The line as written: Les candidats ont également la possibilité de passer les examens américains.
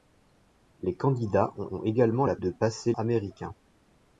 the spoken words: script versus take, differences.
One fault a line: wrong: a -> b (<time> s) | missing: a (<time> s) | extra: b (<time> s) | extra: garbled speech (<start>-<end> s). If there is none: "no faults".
extra: ont (1.7 s)
missing: possibilité (2.4 s)
missing: les examens (2.9 s)